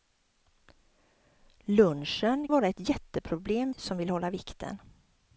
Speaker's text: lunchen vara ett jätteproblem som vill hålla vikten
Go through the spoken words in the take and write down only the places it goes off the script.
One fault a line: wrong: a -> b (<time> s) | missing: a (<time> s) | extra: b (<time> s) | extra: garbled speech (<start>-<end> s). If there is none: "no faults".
no faults